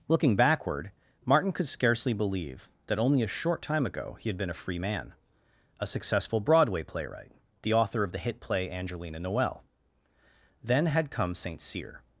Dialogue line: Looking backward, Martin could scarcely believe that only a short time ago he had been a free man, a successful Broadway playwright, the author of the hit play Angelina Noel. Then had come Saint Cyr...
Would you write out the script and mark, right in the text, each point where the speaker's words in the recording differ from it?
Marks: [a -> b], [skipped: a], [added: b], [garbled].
Looking backward, Martin could scarcely believe that only a short time ago he had been a free man, a successful Broadway playwright, the author of the hit play Angelina Noel. Then had come Saint Cyr...